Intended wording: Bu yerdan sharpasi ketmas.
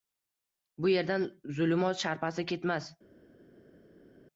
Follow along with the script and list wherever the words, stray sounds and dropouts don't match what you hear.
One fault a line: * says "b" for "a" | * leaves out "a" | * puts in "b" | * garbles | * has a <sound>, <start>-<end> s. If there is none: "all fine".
* puts in "zulumot"